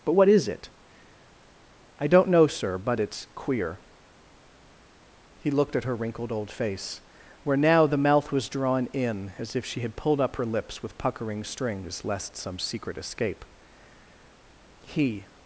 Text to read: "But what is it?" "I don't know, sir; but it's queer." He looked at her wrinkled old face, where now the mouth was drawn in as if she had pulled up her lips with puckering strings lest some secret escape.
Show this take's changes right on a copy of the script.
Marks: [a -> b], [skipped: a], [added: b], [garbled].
"But what is it?" "I don't know, sir; but it's queer." He looked at her wrinkled old face, where now the mouth was drawn in as if she had pulled up her lips with puckering strings lest some secret escape. [added: He]